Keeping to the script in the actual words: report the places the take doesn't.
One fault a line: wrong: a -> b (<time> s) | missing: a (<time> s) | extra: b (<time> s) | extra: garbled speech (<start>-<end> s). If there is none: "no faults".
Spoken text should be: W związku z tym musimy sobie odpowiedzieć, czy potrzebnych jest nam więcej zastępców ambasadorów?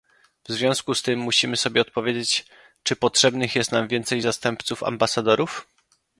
no faults